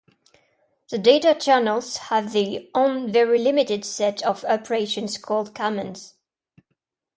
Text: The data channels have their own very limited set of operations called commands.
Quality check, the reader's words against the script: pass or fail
pass